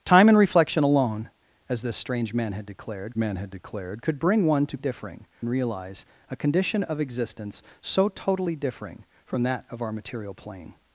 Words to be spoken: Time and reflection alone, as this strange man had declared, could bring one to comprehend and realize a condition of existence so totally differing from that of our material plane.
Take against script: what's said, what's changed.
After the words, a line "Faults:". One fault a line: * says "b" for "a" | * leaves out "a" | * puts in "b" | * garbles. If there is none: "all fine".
Time and reflection alone, as this strange man had declared man had declared, could bring one to differing and realize a condition of existence so totally differing from that of our material plane.
Faults:
* puts in "man had declared"
* says "differing" for "comprehend"